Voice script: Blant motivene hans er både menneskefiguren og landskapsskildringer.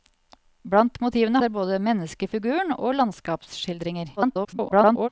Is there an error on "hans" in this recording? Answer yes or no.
yes